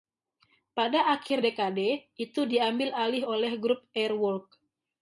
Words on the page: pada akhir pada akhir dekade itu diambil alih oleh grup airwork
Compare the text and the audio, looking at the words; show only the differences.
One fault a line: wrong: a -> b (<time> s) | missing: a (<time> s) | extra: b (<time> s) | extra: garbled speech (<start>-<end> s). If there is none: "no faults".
missing: pada akhir (1.4 s)